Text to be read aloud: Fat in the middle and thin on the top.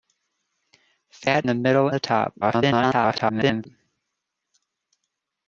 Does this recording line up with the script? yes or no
no